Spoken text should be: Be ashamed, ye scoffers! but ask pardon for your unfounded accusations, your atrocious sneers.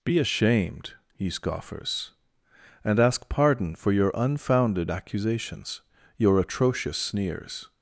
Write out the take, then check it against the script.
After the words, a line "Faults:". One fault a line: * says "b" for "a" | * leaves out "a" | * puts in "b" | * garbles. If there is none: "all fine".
Be ashamed, ye scoffers! and ask pardon for your unfounded accusations, your atrocious sneers.
Faults:
* says "and" for "but"